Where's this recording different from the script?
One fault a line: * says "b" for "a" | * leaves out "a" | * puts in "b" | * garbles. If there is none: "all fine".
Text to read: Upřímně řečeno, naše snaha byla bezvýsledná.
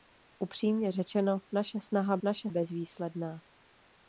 * says "naše" for "byla"